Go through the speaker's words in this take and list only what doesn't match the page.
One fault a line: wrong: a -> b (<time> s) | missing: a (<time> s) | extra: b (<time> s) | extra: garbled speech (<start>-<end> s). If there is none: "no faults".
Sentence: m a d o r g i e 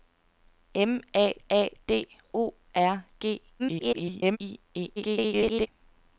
extra: a (1.5 s)
extra: garbled speech (3.6-4.4 s)
extra: garbled speech (5.0-5.7 s)